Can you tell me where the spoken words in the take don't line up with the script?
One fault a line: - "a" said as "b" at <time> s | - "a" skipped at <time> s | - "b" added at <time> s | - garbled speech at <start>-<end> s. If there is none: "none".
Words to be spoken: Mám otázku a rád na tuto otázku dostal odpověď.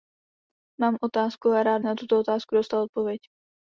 none